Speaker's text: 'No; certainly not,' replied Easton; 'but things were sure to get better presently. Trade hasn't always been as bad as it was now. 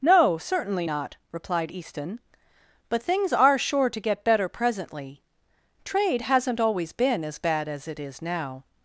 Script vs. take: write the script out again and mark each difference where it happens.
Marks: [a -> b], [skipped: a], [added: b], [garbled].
'No; certainly not,' replied Easton; 'but things [were -> are] sure to get better presently. Trade hasn't always been as bad as it [was -> is] now.